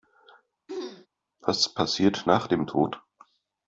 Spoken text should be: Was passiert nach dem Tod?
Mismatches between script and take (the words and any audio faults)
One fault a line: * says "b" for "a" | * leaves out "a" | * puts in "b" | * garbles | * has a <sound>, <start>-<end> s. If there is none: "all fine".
* has a throat clearing, 0.7-1.1 s